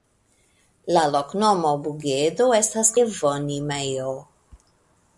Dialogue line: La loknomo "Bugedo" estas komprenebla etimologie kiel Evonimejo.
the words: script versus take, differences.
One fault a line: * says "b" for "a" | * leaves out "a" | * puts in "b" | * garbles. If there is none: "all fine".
* leaves out "komprenebla etimologie kiel"